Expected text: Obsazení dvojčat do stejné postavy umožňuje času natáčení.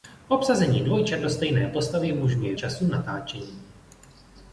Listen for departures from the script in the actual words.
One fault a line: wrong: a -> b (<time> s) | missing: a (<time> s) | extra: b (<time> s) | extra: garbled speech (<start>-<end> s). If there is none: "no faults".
no faults